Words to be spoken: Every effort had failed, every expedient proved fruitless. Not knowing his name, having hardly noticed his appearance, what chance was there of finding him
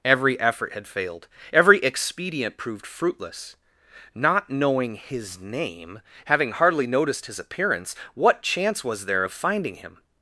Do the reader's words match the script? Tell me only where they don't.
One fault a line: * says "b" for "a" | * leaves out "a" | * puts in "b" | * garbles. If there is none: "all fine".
all fine